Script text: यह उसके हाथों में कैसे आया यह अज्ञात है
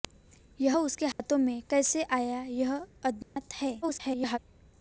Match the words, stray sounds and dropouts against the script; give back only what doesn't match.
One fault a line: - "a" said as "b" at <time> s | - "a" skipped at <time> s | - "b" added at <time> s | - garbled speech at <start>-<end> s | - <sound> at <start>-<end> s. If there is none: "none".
- dropout at 1.1-1.2 s
- dropout at 3.2-3.4 s
- garbled speech at 3.8-4.4 s